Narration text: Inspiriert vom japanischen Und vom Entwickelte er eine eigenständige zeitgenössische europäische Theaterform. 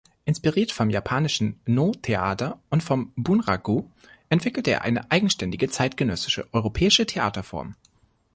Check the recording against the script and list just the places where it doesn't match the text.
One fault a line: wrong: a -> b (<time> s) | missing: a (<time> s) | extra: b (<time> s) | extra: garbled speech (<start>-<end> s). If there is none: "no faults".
extra: No Theater (1.7 s)
extra: Bunraku (3.1 s)